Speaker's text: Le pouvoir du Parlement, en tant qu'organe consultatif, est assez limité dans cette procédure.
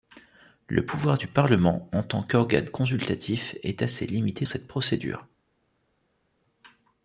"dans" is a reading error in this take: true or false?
true